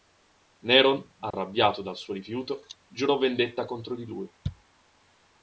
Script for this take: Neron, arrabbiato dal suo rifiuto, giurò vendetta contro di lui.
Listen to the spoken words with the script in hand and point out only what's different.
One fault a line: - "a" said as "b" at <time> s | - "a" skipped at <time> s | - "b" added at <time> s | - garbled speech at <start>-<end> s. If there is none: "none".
none